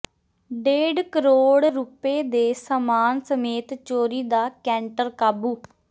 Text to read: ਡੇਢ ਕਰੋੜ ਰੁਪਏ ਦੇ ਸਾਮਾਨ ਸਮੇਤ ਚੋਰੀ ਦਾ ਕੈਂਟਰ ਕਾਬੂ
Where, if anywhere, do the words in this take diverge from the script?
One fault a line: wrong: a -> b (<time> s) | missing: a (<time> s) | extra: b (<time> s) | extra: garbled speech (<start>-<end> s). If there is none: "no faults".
no faults